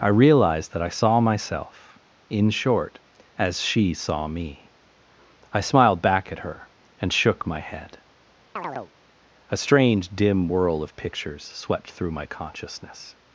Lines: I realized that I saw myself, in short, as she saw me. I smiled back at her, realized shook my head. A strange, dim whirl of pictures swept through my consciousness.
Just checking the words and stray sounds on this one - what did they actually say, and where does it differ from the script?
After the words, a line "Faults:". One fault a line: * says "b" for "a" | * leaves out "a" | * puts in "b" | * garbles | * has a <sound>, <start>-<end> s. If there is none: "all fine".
I realized that I saw myself, in short, as she saw me. I smiled back at her, and shook my head. A strange, dim whirl of pictures swept through my consciousness.
Faults:
* says "and" for "realized"
* has a chirp, 8.6-8.9 s